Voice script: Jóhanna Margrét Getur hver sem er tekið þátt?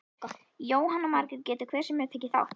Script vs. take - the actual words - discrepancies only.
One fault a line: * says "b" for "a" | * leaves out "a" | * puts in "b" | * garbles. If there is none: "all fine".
all fine